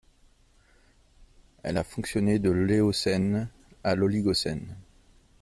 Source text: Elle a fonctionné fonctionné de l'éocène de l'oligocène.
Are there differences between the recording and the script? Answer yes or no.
yes